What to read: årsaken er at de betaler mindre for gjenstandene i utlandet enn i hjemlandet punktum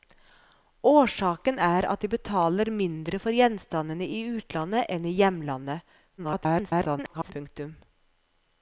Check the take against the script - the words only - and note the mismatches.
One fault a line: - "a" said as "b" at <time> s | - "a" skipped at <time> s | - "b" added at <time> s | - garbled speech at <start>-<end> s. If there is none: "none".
- garbled speech at 6.2-7.3 s